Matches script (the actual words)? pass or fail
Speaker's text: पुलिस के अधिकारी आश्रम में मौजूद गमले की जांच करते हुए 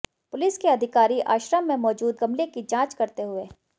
pass